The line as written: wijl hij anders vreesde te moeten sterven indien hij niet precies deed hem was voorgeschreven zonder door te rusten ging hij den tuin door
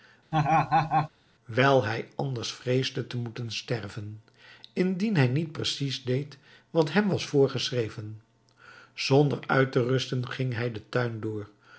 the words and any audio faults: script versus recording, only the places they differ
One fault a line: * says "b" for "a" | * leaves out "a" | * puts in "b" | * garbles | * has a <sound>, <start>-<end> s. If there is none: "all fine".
* has a laugh, 0.3-1.1 s
* puts in "wat"
* says "uit" for "door"